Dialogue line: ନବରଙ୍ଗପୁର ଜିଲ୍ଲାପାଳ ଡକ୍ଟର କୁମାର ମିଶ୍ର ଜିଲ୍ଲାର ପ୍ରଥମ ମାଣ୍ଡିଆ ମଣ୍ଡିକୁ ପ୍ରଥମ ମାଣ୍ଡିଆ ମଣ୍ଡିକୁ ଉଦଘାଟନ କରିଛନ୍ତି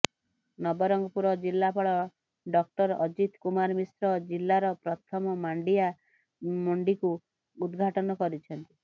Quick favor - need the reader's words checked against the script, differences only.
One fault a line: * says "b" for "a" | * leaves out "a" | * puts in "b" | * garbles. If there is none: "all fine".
* puts in "ଅଜିତ"
* leaves out "ପ୍ରଥମ ମାଣ୍ଡିଆ ମଣ୍ଡିକୁ"